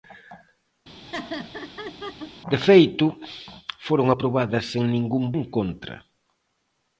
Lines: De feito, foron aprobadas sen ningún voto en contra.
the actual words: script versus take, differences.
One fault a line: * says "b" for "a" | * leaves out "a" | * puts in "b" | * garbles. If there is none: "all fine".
* leaves out "voto"